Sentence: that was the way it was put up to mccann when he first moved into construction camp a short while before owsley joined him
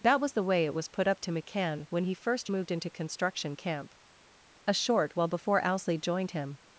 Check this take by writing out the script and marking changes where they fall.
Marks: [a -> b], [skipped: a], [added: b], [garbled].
that was the way it was put up to mccann when he first moved into construction camp a short while before owsley joined him